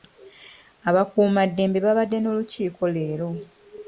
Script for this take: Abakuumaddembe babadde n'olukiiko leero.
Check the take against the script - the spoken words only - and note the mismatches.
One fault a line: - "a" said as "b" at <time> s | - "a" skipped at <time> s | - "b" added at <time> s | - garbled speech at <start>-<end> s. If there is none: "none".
none